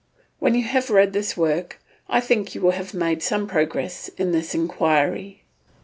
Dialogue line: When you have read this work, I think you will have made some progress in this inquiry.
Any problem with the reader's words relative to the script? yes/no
no